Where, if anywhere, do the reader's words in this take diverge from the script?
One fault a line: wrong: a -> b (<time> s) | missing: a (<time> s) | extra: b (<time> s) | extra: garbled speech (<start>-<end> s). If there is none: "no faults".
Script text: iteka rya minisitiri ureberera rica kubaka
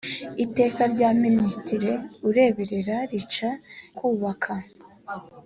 no faults